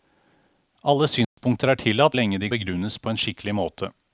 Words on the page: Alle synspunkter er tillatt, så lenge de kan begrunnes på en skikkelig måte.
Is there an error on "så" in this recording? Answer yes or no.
yes